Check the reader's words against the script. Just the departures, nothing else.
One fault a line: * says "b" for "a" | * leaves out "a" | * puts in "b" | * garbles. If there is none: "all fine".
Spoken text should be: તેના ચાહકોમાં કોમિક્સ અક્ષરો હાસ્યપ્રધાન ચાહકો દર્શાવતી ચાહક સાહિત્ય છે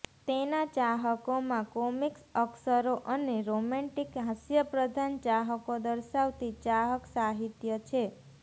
* puts in "અને રોમેન્ટિક"